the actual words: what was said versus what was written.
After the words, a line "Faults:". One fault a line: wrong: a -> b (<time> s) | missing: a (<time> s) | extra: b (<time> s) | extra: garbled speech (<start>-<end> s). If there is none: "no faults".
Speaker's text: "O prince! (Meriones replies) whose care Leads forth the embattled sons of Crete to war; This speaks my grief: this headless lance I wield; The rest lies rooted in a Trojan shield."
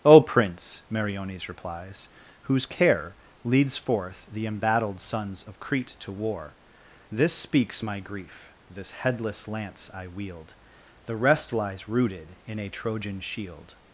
"O prince! (Meriones replies) whose care Leads forth the embattled sons of Crete to war; This speaks my grief: this headless lance I wield; The rest lies rooted in a Trojan shield."
Faults:
no faults